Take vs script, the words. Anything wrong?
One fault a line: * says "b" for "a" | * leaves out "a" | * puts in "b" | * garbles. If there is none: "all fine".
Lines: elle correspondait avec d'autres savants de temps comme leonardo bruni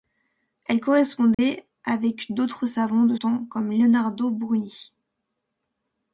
all fine